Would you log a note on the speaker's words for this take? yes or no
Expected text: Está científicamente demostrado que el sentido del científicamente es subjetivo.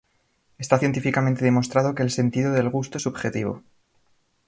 yes